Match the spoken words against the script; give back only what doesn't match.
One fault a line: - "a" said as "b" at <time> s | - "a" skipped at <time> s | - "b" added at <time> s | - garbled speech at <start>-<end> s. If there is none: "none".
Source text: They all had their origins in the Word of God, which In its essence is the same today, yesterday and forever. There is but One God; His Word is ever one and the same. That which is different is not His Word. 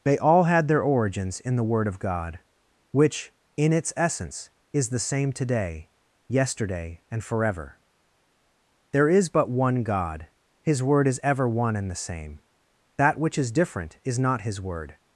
none